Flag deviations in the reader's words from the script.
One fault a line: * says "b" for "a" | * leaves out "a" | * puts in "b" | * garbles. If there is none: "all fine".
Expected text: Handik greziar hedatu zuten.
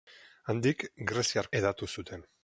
all fine